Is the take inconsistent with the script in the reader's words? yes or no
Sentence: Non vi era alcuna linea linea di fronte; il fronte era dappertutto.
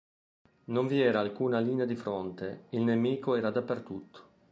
yes